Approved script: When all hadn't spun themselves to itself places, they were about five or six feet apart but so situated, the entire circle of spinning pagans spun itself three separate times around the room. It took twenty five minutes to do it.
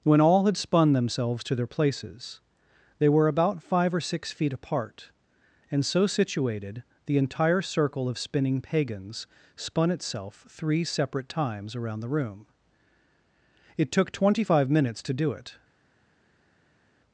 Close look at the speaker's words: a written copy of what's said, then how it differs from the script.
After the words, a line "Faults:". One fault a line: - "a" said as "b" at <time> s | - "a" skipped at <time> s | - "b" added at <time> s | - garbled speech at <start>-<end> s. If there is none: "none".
When all had spun themselves to their places, they were about five or six feet apart and so situated, the entire circle of spinning pagans spun itself three separate times around the room. It took twenty five minutes to do it.
Faults:
- "hadn't" said as "had" at 0.5 s
- "itself" said as "their" at 1.6 s
- "but" said as "and" at 5.7 s